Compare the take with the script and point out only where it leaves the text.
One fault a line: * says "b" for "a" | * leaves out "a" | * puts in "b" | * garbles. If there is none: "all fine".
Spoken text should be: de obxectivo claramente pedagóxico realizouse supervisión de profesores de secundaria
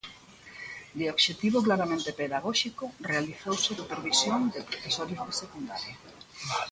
all fine